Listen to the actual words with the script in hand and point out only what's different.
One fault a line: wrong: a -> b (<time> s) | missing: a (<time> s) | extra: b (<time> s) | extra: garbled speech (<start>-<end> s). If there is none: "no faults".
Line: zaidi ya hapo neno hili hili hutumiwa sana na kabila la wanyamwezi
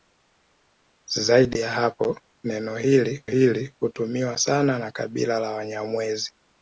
no faults